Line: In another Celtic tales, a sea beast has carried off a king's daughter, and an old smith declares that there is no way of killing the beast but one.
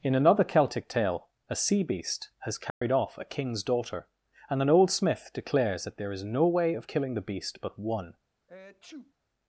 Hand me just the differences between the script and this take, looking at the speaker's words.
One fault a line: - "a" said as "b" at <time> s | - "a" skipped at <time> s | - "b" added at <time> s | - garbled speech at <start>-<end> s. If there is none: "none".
- "tales" said as "tale" at 0.9 s